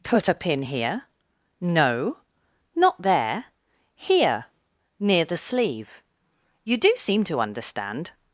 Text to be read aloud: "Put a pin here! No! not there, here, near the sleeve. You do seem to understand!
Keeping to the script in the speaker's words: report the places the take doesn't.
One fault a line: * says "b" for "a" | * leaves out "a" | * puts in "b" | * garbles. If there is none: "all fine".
all fine